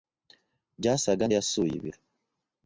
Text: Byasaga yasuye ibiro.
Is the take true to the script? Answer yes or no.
yes